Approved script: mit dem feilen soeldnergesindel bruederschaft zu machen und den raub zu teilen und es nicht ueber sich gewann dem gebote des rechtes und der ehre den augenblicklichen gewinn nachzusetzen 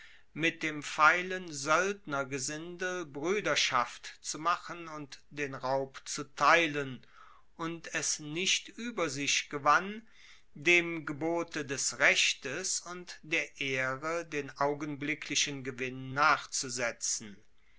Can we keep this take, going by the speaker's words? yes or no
yes